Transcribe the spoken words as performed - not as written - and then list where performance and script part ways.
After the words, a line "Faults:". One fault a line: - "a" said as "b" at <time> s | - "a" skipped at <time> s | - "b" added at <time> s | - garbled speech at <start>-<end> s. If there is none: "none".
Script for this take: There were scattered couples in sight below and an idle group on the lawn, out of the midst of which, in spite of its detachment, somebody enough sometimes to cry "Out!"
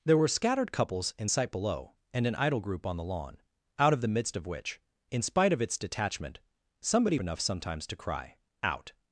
There were scattered couples in sight below and an idle group on the lawn, out of the midst of which, in spite of its detachment, somebody enough sometimes to cry "Out!"
Faults:
none